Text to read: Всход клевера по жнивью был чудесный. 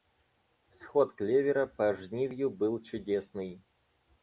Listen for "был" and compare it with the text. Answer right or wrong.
right